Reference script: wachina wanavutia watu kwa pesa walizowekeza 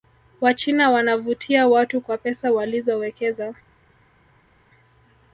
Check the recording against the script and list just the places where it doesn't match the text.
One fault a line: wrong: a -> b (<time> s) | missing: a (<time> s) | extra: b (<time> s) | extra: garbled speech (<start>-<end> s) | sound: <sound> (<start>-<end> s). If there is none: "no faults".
no faults